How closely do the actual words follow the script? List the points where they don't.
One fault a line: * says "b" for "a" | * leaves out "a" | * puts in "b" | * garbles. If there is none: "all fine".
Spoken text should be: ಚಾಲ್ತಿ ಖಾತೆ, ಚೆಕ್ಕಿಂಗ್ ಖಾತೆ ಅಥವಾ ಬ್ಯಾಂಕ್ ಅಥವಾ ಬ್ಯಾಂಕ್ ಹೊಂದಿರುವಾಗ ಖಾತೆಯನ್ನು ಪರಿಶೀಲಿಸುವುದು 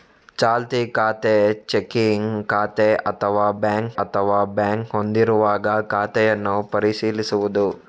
all fine